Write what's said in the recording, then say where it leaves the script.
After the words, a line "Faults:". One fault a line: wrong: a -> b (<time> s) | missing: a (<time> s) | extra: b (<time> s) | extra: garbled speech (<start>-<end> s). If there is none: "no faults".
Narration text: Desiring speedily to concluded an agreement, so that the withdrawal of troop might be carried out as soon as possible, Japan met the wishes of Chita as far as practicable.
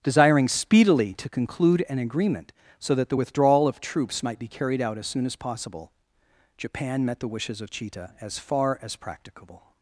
Desiring speedily to conclude an agreement, so that the withdrawal of troops might be carried out as soon as possible, Japan met the wishes of Chita as far as practicable.
Faults:
wrong: concluded -> conclude (1.3 s)
wrong: troop -> troops (3.8 s)